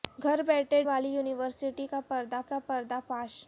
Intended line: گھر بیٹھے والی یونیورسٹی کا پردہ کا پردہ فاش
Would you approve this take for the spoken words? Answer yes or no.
yes